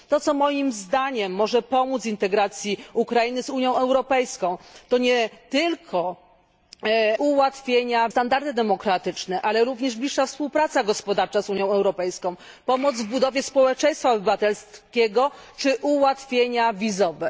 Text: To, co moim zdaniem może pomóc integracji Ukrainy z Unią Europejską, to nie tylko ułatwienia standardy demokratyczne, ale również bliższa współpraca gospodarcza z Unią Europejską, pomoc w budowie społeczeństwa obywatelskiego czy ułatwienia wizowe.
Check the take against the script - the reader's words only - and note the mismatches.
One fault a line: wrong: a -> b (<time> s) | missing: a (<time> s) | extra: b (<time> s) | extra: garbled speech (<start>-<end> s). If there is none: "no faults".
no faults